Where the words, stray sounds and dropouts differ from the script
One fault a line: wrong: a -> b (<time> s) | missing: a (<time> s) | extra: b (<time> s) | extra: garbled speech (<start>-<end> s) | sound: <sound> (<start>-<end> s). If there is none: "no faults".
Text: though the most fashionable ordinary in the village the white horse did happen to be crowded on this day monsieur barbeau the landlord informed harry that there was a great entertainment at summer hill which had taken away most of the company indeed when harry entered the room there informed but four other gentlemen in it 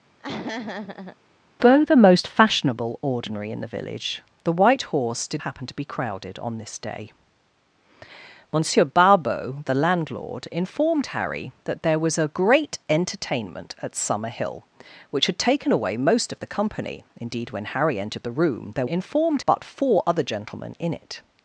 sound: laugh (0.2-1.2 s)